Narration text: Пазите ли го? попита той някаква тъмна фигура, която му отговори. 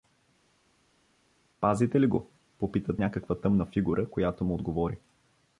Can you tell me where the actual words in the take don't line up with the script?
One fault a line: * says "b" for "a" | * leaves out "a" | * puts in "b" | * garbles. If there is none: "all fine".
* leaves out "той"